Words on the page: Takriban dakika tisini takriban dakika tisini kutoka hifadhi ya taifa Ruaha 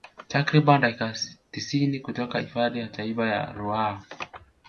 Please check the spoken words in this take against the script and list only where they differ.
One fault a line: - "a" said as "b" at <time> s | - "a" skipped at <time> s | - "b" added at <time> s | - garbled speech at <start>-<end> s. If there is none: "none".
- "takriban dakika tisini" skipped at 2.0 s
- "ya" added at 3.3 s